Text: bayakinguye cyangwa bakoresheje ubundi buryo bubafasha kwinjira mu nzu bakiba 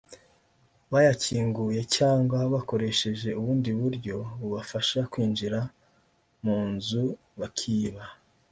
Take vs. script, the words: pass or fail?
pass